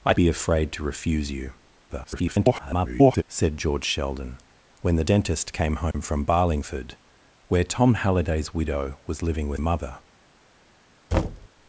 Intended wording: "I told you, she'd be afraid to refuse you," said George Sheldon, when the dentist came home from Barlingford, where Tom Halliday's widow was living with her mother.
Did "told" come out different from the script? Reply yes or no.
yes